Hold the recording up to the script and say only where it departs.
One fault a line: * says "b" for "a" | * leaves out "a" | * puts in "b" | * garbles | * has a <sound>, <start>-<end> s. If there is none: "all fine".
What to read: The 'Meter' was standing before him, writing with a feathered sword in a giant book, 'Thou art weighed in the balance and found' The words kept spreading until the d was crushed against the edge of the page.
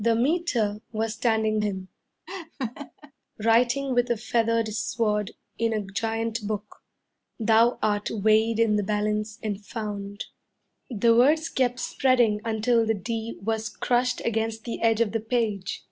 * leaves out "before"
* has a laugh, 2.3-3.1 s